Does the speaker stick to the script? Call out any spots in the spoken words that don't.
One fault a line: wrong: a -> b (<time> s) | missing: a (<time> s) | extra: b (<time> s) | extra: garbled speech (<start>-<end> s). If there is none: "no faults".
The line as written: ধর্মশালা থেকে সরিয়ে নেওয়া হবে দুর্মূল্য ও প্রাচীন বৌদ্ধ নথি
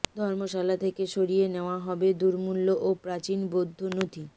no faults